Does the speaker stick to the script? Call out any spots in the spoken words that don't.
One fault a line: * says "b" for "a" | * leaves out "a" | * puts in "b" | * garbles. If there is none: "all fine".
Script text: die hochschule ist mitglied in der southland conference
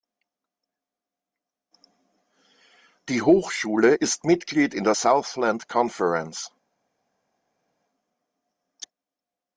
all fine